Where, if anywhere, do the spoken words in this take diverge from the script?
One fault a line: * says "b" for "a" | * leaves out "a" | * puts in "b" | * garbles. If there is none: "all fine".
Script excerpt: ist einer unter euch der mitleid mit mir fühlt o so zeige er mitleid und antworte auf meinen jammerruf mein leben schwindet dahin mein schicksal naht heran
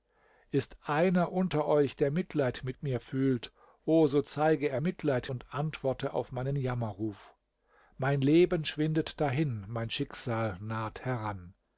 all fine